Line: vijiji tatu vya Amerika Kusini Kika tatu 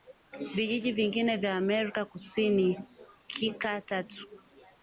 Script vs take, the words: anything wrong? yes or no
yes